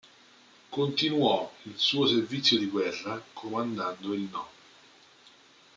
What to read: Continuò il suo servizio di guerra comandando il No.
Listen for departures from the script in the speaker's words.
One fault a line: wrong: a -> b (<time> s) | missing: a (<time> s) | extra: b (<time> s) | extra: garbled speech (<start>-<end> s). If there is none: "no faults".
no faults